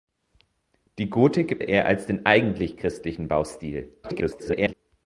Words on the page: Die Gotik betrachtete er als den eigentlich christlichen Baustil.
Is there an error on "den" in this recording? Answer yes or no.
no